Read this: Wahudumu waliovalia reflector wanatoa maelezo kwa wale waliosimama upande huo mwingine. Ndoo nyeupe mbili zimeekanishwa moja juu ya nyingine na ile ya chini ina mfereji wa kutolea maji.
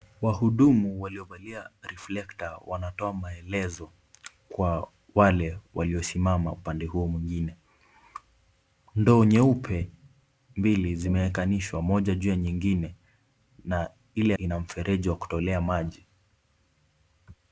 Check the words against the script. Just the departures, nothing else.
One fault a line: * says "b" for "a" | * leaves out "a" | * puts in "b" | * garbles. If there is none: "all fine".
* leaves out "ya chini"